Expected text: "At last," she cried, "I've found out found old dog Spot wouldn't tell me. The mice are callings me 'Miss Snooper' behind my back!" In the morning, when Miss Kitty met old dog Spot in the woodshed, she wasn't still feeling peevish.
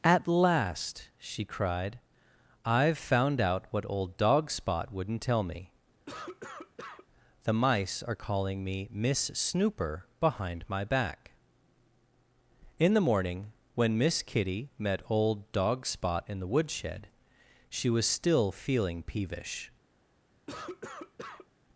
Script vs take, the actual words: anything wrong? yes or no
yes